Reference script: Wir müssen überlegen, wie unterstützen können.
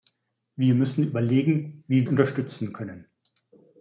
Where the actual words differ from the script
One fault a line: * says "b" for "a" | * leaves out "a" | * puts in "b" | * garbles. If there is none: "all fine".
all fine